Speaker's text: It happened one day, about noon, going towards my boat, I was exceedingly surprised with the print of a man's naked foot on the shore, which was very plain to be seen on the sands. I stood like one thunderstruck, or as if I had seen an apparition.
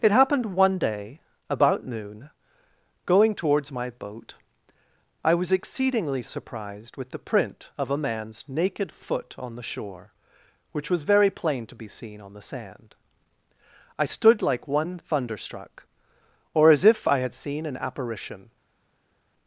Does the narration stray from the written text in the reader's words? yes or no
yes